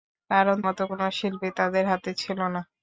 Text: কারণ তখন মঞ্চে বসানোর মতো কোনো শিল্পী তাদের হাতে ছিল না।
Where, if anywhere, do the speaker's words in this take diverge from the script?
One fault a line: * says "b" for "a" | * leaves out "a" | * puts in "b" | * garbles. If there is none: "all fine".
* leaves out "তখন মঞ্চে বসানোর"